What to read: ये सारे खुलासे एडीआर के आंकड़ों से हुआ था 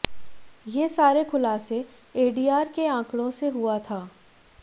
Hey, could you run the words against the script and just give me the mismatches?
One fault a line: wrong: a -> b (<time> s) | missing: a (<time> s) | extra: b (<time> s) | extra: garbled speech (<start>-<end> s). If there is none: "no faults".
no faults